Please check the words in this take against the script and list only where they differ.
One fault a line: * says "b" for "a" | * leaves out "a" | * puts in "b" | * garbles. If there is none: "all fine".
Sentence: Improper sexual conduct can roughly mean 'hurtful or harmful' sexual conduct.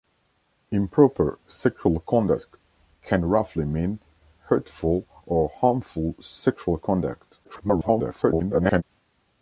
* garbles